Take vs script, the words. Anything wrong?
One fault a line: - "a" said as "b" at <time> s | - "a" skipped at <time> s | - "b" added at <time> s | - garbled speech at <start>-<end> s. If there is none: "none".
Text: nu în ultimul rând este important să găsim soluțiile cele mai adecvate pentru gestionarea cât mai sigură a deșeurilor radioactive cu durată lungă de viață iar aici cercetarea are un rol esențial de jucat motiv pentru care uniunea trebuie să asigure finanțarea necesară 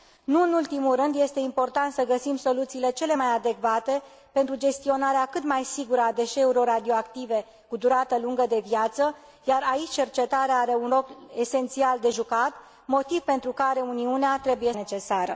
- "să asigure finanțarea" skipped at 14.7 s